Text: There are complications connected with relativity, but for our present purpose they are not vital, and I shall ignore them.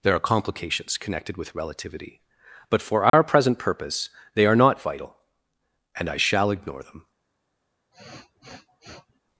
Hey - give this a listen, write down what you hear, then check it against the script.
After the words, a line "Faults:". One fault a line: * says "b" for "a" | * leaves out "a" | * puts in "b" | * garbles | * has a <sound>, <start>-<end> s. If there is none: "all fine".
There are complications connected with relativity, but for our present purpose they are not vital, and I shall ignore them.
Faults:
* has a dropout, 3.1-3.1 s
* has a sniff, 7.9-9.2 s